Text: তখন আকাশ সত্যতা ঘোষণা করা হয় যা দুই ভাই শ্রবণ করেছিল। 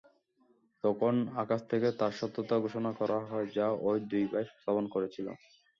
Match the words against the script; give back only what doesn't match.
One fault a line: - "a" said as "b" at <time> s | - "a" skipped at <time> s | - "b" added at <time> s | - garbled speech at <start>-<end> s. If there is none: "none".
- "থেকে তার" added at 1.7 s
- "ঐ" added at 3.8 s